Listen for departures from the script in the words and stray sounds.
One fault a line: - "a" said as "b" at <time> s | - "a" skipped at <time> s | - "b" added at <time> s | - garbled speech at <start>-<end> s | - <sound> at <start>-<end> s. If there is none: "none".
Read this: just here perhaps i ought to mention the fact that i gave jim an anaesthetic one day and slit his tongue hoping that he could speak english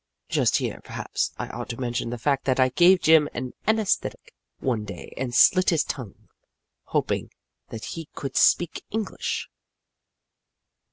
none